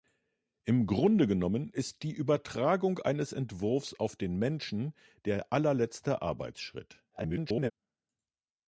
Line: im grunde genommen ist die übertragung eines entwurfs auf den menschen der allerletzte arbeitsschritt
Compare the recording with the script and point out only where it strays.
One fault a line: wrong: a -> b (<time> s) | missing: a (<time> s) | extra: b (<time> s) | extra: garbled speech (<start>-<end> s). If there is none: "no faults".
extra: garbled speech (7.1-7.7 s)